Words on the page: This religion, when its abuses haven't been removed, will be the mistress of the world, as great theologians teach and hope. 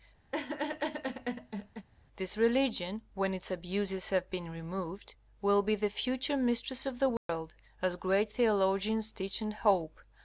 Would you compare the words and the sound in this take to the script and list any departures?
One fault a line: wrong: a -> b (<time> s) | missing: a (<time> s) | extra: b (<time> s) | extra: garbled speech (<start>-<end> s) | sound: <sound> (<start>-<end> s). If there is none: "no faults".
sound: laugh (0.3-1.9 s)
wrong: haven't -> have (4.1 s)
extra: future (5.9 s)
sound: dropout (7.2-7.3 s)